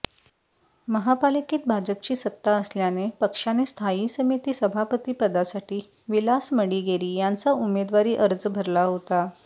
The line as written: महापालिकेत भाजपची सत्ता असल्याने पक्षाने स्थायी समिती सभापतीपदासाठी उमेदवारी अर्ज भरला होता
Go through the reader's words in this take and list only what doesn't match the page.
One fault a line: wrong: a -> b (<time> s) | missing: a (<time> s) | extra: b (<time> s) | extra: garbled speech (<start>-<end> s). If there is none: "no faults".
extra: विलास मडिगेरी यांचा (6.1 s)